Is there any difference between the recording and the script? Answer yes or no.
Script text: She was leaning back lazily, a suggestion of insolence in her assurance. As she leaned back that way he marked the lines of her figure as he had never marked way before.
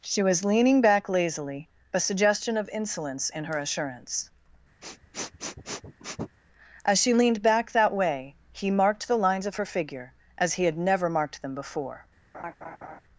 yes